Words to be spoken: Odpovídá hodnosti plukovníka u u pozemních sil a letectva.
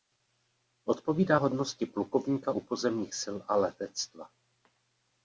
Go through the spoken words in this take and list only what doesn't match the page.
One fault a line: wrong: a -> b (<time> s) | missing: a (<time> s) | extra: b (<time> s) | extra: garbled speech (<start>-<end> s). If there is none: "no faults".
missing: u (2.6 s)